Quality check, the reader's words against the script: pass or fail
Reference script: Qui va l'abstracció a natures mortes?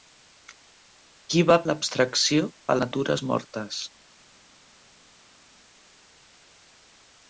pass